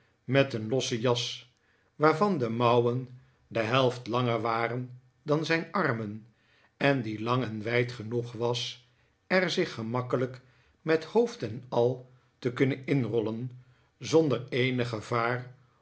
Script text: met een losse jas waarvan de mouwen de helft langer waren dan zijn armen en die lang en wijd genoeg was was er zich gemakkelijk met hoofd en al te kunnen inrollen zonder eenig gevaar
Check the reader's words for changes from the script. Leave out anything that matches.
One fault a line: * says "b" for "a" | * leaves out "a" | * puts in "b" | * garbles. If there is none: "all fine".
* leaves out "was"